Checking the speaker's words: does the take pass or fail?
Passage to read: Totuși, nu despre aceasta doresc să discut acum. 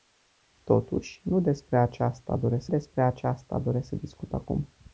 fail